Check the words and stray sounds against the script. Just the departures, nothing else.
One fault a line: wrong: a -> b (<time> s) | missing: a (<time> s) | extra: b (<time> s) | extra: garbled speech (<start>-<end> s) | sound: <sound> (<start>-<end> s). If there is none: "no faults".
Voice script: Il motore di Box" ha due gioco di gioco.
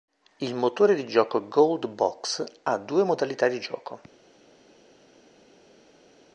extra: gioco Gold (1.1 s)
wrong: gioco -> modalità (3.0 s)